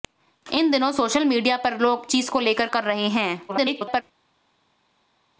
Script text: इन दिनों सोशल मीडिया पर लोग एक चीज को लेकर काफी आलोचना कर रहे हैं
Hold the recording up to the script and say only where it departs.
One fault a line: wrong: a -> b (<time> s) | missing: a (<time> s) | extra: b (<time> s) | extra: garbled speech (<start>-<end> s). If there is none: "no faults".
missing: एक (2.1 s)
missing: काफी आलोचना (2.7 s)
extra: garbled speech (3.5-4.0 s)